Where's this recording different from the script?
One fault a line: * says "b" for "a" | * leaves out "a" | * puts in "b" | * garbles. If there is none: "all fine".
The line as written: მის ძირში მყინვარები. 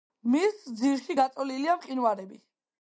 * puts in "გაწოლილია"